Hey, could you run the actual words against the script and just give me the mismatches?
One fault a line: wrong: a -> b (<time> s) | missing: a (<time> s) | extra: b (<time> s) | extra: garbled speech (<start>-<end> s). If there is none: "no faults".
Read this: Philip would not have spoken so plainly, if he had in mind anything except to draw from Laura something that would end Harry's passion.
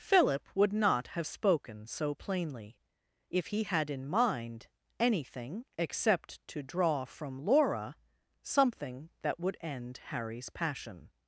no faults